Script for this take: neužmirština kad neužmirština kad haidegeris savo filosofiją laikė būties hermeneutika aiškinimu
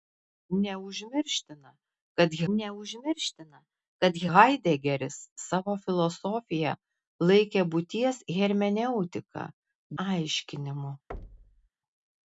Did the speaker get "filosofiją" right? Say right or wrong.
right